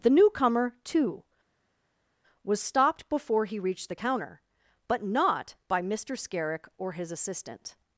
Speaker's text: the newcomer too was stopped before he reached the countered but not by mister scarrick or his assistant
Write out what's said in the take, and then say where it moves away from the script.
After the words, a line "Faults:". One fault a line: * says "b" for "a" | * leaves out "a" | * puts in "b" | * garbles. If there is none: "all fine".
the newcomer too was stopped before he reached the counter but not by mister scarrick or his assistant
Faults:
* says "counter" for "countered"